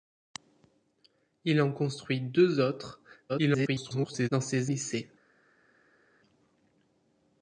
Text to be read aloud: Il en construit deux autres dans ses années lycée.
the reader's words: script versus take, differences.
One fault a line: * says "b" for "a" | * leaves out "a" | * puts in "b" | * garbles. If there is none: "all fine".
* garbles
* leaves out "années"